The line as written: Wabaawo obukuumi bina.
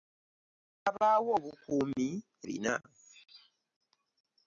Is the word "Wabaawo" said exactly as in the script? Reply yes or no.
yes